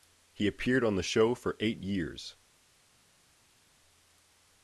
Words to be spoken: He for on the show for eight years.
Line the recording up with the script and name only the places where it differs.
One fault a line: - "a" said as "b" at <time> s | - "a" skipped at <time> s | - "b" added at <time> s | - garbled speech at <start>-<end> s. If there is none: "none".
- "for" said as "appeared" at 0.5 s